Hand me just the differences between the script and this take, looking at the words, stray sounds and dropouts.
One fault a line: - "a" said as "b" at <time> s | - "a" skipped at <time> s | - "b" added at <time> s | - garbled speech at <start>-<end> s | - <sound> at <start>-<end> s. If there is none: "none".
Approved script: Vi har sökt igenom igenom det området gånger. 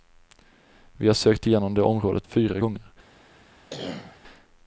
- "igenom" skipped at 1.7 s
- "fyra" added at 2.2 s
- cough at 3.7-4.2 s